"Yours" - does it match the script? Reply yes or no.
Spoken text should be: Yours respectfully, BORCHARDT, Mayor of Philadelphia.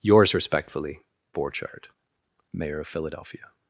yes